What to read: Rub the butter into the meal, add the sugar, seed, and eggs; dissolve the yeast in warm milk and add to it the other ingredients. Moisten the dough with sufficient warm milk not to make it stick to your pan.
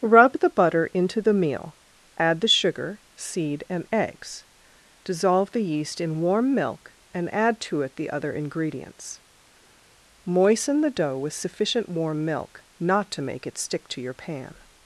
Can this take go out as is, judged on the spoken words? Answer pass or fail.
pass